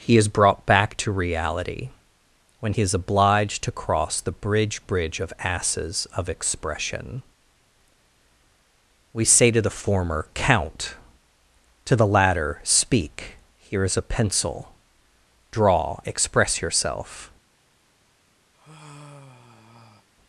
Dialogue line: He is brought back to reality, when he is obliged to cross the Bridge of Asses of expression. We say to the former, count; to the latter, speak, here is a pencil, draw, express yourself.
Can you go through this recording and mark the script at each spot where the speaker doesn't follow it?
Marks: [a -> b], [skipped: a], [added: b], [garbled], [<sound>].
He is brought back to reality, when he is obliged to cross the Bridge [added: Bridge] of Asses of expression. We say to the former, count; to the latter, speak, here is a pencil, draw, express yourself. [sigh]